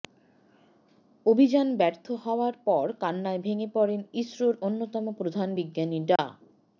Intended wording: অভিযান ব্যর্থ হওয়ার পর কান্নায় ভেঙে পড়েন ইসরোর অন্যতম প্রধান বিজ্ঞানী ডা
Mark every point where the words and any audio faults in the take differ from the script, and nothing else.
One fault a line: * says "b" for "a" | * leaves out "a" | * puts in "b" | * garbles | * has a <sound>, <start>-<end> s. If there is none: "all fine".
* has a dropout, 6.2-6.2 s